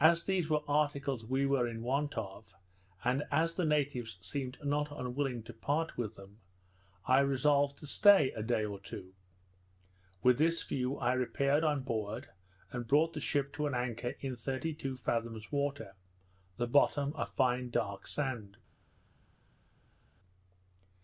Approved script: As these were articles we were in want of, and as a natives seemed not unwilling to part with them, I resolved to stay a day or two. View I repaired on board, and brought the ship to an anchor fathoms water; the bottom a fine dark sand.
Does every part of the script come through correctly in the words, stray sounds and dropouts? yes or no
no